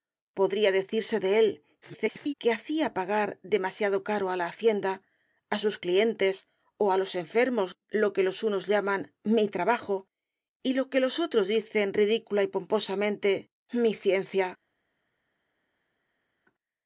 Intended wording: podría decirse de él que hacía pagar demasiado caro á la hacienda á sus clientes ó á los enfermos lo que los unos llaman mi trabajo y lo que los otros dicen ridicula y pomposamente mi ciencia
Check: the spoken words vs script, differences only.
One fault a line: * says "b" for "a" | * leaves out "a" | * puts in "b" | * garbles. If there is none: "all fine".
* garbles